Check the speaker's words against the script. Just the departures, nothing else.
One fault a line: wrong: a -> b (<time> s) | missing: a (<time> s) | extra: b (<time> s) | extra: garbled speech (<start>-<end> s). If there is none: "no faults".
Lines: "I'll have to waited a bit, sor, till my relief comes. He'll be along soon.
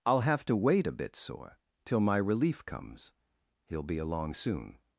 wrong: waited -> wait (0.6 s)